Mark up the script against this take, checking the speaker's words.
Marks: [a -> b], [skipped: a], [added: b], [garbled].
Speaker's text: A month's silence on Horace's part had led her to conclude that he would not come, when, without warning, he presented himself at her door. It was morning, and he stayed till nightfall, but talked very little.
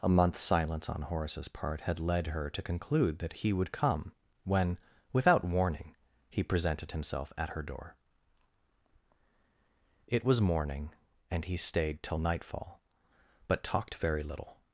A month's silence on Horace's part had led her to conclude that he would [skipped: not] come, when, without warning, he presented himself at her door. It was morning, and he stayed till nightfall, but talked very little.